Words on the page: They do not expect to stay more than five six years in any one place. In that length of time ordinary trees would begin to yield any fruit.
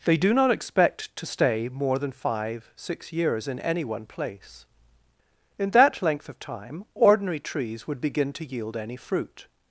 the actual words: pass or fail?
pass